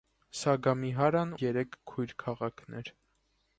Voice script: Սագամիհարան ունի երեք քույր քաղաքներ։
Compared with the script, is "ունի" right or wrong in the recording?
wrong